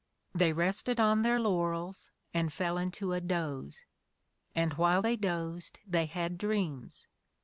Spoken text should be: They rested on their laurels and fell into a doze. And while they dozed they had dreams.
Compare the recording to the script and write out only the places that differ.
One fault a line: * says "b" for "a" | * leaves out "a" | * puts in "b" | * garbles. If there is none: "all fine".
all fine